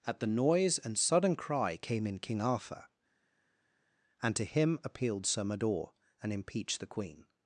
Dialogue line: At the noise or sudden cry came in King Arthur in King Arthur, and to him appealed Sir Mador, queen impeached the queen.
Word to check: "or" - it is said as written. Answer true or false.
false